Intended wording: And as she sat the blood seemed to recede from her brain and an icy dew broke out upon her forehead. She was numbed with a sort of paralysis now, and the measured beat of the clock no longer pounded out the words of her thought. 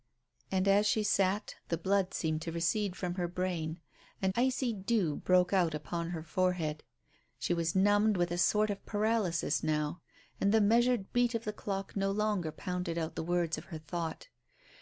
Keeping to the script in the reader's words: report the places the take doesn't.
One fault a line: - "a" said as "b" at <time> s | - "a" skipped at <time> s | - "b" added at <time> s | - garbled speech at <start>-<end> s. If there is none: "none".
- "an" skipped at 4.3 s